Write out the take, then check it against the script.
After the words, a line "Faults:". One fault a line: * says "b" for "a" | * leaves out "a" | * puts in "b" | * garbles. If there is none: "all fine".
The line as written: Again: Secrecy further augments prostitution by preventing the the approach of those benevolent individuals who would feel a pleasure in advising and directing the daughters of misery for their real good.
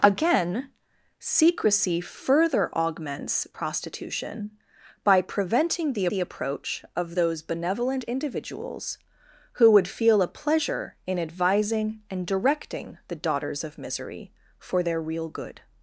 Again: Secrecy further augments prostitution by preventing the the approach of those benevolent individuals who would feel a pleasure in advising and directing the daughters of misery for their real good.
Faults:
all fine